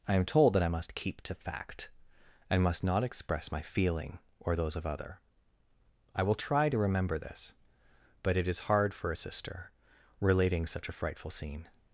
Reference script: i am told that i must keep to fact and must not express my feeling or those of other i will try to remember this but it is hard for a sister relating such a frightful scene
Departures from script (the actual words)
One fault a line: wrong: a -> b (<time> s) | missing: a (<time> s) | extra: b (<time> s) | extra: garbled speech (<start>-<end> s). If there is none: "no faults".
no faults